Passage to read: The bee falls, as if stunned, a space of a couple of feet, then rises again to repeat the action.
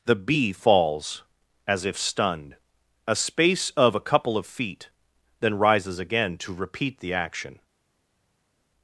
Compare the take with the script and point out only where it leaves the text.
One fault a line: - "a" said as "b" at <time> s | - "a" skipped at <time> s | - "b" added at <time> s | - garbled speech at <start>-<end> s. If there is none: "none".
none